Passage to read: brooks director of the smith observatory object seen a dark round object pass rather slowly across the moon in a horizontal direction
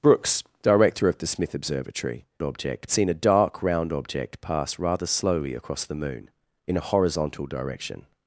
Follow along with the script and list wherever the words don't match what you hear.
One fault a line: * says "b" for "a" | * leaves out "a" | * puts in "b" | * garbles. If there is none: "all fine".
all fine